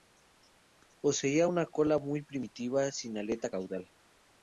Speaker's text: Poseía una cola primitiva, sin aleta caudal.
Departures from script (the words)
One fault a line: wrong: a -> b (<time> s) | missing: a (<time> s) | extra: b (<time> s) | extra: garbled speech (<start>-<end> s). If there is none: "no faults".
extra: muy (2.0 s)